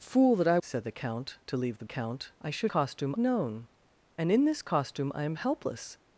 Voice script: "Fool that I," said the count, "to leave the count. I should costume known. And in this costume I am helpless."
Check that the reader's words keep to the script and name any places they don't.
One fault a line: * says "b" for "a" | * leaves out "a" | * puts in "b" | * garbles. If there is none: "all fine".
all fine